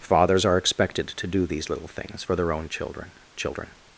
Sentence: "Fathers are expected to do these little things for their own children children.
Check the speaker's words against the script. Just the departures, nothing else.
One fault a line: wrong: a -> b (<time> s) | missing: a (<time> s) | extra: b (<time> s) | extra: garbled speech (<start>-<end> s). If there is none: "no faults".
no faults